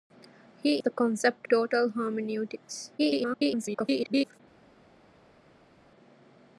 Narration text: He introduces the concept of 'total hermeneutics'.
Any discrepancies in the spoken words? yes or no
yes